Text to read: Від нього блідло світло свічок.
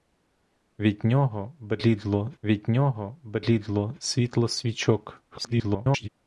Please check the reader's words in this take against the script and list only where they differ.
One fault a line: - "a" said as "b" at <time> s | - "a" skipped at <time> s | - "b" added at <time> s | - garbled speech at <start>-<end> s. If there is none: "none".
- "від нього блідло" added at 2.4 s
- garbled speech at 5.3-6.1 s